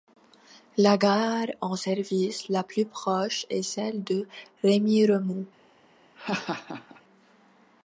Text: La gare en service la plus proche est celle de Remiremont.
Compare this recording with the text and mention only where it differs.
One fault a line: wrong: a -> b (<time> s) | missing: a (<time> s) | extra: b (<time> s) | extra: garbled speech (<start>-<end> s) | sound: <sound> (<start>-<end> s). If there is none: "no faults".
sound: laugh (6.2-7.0 s)